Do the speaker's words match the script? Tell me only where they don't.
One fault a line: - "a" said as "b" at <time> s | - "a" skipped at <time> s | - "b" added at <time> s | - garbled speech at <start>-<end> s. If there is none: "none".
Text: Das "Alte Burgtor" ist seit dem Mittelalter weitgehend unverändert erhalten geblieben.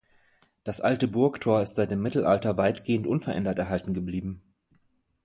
none